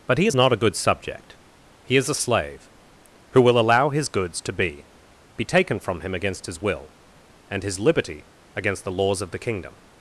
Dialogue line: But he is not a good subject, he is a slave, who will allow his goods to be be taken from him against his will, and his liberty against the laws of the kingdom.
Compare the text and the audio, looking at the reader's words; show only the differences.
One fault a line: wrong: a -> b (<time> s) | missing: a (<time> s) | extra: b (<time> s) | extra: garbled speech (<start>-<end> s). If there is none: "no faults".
no faults